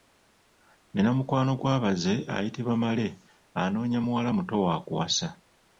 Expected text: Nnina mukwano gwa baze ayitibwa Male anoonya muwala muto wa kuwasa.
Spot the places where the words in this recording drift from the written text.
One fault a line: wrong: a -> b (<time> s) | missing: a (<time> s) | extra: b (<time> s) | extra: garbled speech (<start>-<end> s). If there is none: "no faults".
no faults